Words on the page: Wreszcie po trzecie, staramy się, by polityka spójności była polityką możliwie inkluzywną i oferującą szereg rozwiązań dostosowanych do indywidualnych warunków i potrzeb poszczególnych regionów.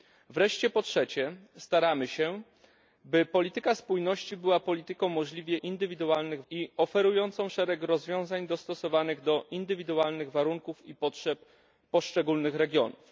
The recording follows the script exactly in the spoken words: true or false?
false